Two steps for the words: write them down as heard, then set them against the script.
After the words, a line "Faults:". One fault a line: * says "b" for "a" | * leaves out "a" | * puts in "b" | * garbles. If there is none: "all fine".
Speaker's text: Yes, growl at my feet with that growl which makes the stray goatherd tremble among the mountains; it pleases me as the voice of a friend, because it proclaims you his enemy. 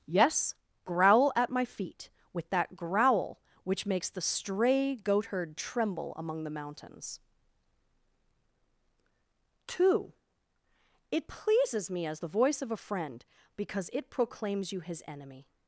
Yes, growl at my feet with that growl which makes the stray goatherd tremble among the mountains; two it pleases me as the voice of a friend, because it proclaims you his enemy.
Faults:
* puts in "two"